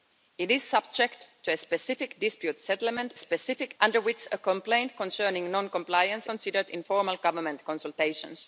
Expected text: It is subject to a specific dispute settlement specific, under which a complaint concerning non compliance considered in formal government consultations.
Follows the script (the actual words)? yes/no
yes